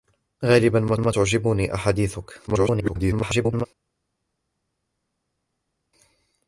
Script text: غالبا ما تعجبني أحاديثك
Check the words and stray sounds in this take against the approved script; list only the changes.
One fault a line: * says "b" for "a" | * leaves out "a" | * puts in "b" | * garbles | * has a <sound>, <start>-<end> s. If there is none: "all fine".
* puts in "ما"
* garbles